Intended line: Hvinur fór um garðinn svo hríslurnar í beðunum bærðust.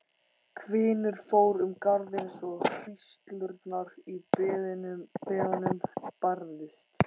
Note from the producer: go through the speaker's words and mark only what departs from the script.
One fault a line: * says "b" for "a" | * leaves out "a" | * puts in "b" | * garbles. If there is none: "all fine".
all fine